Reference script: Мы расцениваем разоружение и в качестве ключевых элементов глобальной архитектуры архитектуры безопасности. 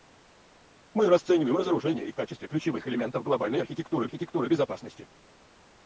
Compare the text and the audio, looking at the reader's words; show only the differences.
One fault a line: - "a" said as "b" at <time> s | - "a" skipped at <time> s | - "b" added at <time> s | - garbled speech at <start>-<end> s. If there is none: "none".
none